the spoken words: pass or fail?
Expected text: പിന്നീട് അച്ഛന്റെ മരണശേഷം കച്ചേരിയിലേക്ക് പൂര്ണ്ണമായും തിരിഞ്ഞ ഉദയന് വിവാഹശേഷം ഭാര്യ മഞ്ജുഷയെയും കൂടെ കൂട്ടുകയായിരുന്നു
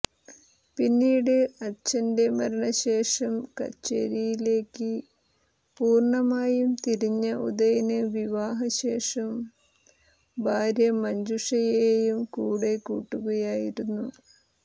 pass